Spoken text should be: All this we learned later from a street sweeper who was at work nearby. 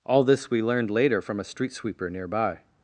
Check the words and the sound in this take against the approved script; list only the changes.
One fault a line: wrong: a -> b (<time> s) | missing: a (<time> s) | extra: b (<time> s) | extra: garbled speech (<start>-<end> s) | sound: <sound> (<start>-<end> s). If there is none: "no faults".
missing: who was at work (2.1 s)